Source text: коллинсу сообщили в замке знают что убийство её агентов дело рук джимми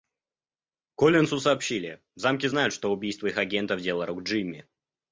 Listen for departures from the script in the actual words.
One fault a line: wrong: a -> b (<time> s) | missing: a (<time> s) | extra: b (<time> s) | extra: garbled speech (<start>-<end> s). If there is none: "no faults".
wrong: её -> их (3.3 s)